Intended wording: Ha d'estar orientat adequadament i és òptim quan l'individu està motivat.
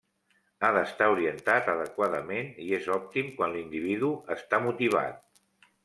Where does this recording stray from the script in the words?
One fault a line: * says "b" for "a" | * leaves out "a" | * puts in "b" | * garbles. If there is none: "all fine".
all fine